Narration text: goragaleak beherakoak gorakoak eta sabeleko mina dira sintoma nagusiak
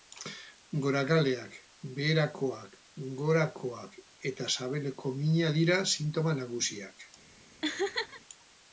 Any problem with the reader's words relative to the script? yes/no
no